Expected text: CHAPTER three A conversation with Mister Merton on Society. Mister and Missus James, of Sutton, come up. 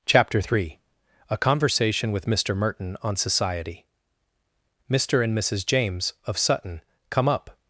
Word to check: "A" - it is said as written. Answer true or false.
true